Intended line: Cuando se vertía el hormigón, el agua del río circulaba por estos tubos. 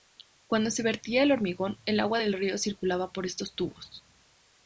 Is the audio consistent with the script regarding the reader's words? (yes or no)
yes